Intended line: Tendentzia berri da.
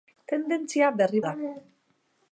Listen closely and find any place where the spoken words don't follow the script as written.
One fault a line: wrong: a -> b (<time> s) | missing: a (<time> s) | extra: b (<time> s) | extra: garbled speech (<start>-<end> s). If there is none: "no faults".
no faults